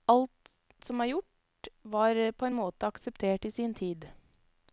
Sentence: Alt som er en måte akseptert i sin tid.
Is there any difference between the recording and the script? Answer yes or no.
yes